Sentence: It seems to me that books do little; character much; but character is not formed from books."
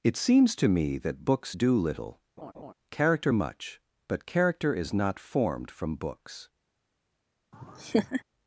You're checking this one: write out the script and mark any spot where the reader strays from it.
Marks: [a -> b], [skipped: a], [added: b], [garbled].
It seems to me that books do little; character much; but character is not formed from books."